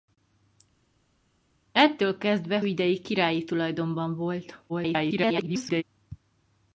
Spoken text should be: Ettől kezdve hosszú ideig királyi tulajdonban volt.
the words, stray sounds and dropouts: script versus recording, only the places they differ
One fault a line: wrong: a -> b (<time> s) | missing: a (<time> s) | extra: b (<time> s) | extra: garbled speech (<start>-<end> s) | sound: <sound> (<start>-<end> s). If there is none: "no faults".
missing: hosszú (2.6 s)
extra: garbled speech (4.7-5.8 s)